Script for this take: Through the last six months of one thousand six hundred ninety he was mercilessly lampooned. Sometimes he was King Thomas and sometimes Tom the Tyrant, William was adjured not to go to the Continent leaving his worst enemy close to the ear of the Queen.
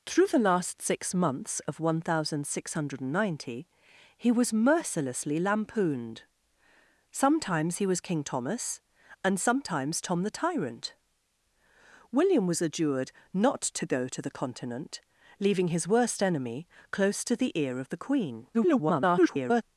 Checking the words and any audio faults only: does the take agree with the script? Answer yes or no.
no